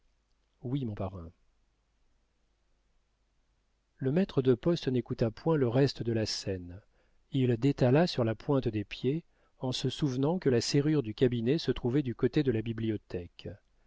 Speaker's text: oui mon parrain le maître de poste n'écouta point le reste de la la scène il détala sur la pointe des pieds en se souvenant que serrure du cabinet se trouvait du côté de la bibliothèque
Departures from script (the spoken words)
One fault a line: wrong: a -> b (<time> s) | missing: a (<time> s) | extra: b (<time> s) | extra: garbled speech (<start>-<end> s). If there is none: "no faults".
missing: la (6.2 s)
extra: la (10.5 s)